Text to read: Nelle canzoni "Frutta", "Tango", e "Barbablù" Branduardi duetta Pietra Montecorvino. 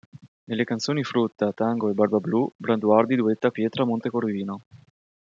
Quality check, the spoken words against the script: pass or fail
pass